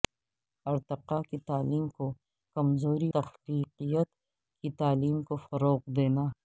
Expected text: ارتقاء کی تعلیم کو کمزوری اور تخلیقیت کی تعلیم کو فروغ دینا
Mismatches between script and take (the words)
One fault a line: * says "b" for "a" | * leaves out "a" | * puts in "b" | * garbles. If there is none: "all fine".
* leaves out "اور"